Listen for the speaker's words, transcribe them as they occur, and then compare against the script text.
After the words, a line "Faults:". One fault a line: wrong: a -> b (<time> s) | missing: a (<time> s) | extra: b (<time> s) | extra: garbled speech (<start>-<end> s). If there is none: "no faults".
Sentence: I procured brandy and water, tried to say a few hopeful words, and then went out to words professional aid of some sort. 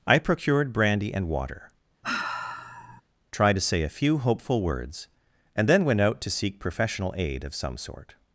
I procured brandy and water, tried to say a few hopeful words, and then went out to seek professional aid of some sort.
Faults:
wrong: words -> seek (6.3 s)